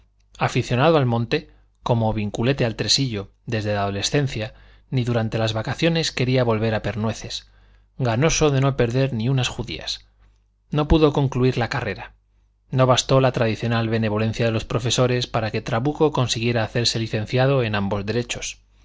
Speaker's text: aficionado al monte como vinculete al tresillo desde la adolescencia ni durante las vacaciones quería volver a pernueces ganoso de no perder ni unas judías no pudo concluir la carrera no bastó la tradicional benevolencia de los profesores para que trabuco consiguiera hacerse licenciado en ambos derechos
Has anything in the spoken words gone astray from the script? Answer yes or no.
no